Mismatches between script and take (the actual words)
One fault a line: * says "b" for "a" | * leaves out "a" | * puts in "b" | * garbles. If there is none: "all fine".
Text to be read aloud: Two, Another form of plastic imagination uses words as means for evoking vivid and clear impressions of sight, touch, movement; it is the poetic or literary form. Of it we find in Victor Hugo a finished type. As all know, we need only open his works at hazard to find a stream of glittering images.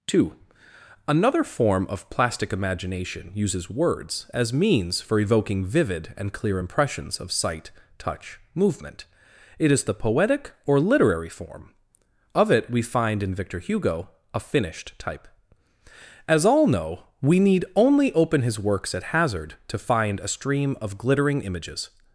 all fine